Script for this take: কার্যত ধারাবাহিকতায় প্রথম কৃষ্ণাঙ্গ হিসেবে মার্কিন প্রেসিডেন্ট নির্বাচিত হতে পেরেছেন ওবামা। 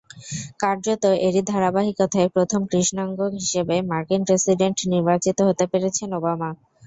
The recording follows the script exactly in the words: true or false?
false